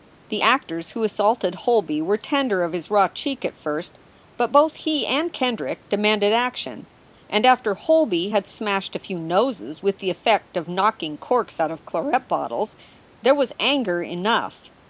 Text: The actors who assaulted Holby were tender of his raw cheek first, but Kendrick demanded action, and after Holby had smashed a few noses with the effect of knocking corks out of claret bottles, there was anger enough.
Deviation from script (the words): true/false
true